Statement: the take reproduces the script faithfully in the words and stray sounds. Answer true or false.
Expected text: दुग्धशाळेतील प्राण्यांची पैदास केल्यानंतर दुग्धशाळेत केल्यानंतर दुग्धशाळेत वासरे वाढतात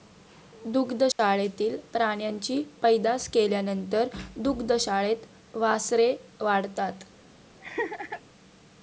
false